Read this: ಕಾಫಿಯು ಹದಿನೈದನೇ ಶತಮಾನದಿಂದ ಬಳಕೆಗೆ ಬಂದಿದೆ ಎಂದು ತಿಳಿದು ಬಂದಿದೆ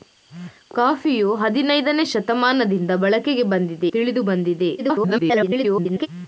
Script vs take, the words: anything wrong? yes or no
yes